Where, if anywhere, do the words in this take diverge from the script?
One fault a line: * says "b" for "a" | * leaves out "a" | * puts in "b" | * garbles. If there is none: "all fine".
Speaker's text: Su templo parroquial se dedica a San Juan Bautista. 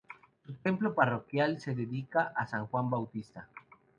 all fine